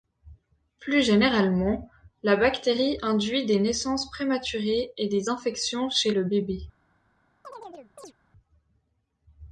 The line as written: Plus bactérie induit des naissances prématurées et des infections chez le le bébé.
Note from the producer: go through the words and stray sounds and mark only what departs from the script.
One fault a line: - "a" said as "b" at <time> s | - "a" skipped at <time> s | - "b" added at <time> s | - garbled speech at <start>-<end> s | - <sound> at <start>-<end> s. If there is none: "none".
- "généralement la" added at 1.0 s
- "le" skipped at 6.2 s
- chirp at 7.4-8.1 s